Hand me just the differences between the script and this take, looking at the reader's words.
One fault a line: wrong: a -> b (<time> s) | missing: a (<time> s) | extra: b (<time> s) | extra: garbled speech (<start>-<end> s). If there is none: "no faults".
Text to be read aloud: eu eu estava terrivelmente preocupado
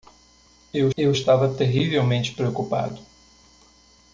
no faults